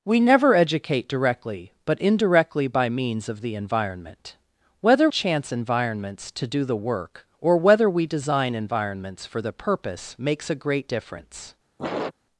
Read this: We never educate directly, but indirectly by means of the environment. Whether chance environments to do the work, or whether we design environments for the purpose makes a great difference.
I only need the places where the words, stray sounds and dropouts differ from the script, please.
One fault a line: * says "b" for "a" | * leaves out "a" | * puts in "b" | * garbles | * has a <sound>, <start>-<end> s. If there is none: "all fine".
* has a sniff, 11.8-12.1 s